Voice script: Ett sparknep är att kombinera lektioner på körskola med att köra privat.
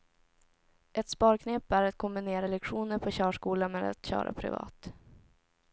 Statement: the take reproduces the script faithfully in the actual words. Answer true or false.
true